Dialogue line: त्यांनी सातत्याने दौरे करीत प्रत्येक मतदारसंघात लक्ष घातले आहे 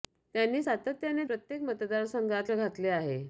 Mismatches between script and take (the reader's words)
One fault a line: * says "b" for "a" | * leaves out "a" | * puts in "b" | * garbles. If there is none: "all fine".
* leaves out "दौरे करीत"
* leaves out "लक्ष"